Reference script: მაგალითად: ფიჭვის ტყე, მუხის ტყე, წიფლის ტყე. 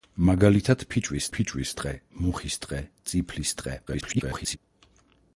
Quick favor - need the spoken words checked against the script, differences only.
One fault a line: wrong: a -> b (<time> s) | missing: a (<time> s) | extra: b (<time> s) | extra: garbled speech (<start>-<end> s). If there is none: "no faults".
extra: ფიჭვის (1.4 s)
extra: garbled speech (3.9-4.6 s)